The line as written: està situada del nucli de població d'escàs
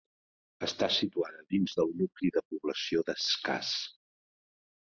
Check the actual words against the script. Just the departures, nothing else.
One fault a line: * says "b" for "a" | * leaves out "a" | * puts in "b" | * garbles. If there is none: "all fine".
* puts in "dins"